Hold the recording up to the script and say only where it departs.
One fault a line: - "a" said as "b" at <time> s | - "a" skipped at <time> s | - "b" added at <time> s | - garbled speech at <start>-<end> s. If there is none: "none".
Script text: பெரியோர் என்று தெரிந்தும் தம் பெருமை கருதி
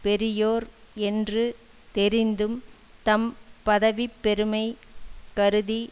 - "பதவி" added at 3.6 s